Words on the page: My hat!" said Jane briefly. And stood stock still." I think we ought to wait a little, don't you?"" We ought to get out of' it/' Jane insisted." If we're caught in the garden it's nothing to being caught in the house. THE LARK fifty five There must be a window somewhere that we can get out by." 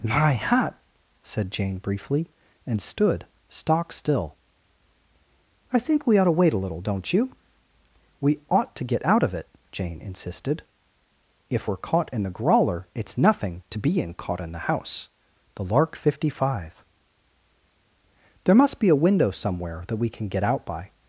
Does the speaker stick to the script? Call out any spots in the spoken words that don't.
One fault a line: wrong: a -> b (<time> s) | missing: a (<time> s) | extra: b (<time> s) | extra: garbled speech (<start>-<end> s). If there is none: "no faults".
wrong: garden -> grawler (12.3 s)